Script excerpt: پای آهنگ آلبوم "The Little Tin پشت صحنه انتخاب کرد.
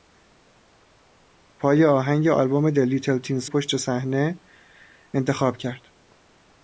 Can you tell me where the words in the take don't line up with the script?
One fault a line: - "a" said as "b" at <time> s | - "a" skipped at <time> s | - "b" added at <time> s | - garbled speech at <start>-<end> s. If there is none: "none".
none